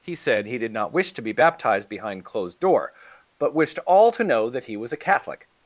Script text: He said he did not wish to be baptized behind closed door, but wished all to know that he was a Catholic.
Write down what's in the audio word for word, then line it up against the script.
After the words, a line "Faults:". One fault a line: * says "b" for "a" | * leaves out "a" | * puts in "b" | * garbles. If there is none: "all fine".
He said he did not wish to be baptized behind closed door, but wished all to know that he was a Catholic.
Faults:
all fine